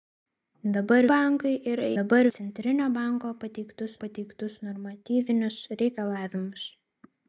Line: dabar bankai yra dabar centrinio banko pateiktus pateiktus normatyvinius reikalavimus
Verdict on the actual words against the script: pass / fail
pass